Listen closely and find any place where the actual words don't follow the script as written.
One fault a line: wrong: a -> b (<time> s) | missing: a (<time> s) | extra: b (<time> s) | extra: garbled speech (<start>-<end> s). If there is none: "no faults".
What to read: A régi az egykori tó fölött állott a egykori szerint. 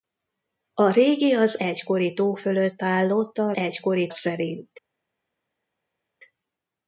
no faults